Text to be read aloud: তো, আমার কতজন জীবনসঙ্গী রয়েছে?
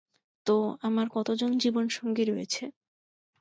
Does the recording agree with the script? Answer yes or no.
yes